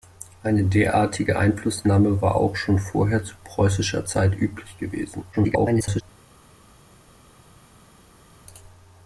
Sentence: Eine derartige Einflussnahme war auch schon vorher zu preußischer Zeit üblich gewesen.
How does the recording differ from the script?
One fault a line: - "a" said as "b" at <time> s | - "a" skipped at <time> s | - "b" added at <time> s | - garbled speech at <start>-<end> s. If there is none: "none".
- garbled speech at 5.3-6.0 s